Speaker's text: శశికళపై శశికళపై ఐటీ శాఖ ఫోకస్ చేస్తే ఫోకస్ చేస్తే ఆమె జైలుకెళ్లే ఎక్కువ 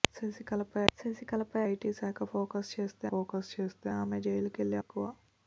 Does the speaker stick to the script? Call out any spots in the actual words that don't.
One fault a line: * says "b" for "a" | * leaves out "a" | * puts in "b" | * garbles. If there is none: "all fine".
all fine